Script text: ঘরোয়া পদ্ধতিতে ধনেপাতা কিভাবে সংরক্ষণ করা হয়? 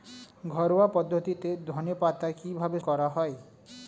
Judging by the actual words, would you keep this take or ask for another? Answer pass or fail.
fail